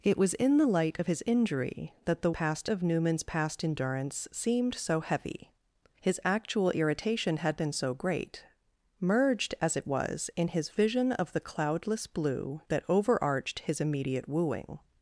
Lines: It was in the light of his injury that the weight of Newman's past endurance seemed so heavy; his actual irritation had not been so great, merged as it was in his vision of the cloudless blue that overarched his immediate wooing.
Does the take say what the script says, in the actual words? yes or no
no